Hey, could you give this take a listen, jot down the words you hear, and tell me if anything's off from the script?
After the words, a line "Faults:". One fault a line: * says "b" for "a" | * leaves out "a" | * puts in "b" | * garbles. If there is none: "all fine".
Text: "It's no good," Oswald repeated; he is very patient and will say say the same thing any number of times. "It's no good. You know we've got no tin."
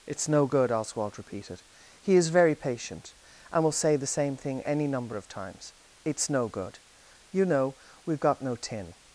"It's no good," Oswald repeated; he is very patient and will say the same thing any number of times. "It's no good. You know we've got no tin."
Faults:
* leaves out "say"